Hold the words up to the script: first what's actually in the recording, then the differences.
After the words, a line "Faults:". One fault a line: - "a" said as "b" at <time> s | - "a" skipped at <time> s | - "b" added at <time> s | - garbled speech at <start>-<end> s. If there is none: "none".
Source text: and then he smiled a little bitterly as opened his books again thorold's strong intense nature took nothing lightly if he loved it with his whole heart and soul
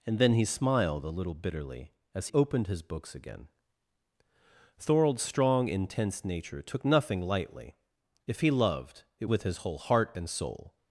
and then he smiled a little bitterly as opened his books again thorold's strong intense nature took nothing lightly if he loved it with his whole heart and soul
Faults:
none